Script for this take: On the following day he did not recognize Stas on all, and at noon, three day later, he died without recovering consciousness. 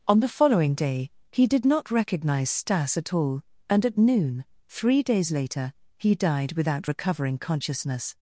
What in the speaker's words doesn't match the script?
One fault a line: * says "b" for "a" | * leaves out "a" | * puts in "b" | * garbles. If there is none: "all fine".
* says "at" for "on"
* says "days" for "day"